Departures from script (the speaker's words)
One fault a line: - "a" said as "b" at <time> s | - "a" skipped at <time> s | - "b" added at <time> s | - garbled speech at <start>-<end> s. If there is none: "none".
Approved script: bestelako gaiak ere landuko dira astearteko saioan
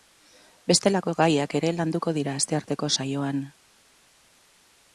none